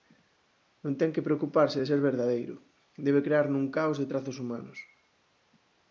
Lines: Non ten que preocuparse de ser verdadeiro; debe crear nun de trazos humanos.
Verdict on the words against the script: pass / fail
fail